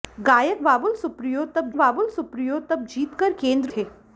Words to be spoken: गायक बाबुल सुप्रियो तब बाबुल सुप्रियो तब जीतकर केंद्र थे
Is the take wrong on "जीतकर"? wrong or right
right